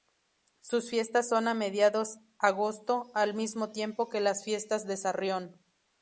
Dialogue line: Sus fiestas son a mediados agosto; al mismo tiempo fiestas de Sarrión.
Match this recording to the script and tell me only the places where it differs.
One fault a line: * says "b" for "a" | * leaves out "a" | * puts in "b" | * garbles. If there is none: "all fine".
* puts in "que las"